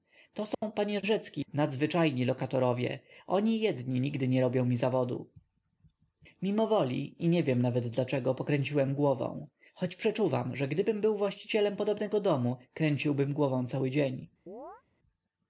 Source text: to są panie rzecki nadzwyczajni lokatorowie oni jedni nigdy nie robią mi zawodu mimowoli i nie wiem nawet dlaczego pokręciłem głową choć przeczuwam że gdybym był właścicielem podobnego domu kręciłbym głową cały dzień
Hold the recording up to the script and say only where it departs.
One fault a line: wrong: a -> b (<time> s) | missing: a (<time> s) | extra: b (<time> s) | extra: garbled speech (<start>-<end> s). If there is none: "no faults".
no faults